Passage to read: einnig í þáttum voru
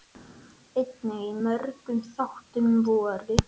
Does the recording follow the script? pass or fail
fail